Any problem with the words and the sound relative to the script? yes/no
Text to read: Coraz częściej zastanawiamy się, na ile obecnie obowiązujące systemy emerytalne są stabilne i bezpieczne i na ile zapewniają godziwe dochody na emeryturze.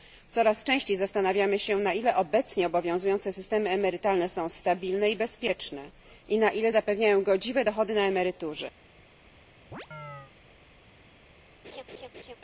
yes